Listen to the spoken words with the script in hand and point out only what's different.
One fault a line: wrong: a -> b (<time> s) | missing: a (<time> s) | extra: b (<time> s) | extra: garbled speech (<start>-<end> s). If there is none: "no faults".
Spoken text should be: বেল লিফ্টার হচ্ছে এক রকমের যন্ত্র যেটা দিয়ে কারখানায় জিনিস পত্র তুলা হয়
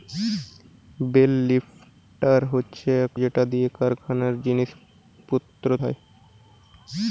missing: রকমের যন্ত্র (3.1 s)
missing: তুলা (5.7 s)